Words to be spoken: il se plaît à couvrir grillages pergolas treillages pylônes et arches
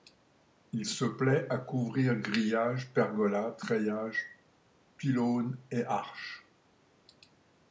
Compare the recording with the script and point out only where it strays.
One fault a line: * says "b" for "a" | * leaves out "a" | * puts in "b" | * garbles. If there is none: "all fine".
all fine